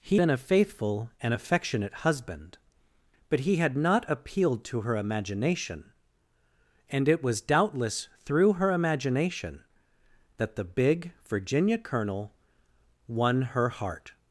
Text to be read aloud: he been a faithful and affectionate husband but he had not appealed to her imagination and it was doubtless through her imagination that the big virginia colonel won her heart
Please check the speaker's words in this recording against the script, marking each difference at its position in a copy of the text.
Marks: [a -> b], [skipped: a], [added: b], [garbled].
he been a faithful and affectionate husband but he had not appealed to her imagination and it was doubtless through her imagination that the big virginia colonel won her heart